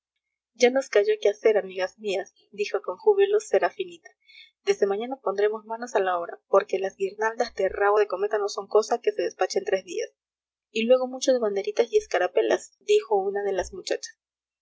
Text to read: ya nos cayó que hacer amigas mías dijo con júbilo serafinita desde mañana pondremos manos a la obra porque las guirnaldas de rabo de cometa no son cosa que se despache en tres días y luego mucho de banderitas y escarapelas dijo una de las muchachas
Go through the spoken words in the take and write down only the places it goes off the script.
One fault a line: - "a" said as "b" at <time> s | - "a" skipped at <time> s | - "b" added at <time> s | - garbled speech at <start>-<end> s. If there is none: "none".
none